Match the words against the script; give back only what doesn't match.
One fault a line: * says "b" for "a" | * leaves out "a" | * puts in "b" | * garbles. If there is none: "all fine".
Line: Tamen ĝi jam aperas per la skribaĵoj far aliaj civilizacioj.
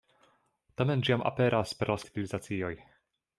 * leaves out "skribaĵoj far aliaj"